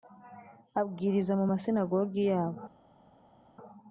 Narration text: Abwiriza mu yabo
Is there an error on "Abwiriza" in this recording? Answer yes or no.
no